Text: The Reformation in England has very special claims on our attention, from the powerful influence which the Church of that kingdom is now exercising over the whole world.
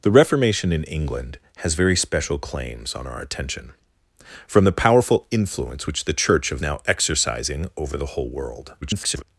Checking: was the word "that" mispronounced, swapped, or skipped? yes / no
yes